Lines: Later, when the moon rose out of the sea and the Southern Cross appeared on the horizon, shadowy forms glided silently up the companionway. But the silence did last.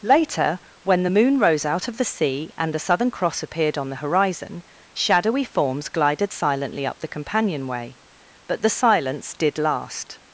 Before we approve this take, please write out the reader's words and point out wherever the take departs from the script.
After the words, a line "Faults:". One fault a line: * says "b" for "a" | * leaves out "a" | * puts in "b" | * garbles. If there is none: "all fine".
Later, when the moon rose out of the sea and the Southern Cross appeared on the horizon, shadowy forms glided silently up the companionway. But the silence did last.
Faults:
all fine